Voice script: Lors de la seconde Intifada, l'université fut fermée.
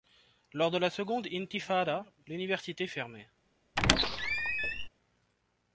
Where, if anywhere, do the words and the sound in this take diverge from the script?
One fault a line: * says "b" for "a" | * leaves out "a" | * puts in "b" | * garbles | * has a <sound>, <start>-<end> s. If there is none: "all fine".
* leaves out "fut"
* has a squeak, 3.8-4.9 s